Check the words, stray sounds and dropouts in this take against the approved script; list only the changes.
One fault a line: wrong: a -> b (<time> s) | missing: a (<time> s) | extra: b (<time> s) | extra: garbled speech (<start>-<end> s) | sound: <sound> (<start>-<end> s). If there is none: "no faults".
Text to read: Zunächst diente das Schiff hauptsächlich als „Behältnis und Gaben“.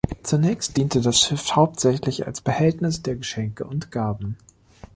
extra: der Geschenke (3.0 s)